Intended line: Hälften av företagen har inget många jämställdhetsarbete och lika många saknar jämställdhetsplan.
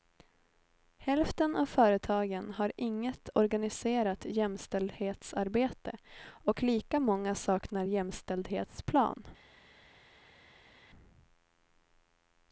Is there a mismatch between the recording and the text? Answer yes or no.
yes